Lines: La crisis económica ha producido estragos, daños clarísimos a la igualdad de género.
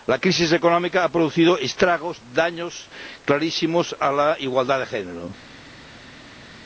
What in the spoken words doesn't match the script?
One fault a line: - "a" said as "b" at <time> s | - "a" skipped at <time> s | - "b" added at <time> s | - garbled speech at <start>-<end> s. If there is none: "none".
none